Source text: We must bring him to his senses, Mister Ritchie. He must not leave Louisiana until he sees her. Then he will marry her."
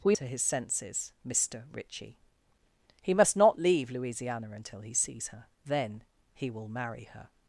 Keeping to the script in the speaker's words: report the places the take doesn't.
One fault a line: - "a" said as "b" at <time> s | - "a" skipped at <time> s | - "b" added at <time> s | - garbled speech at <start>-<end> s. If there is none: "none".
- "must bring him" skipped at 0.1 s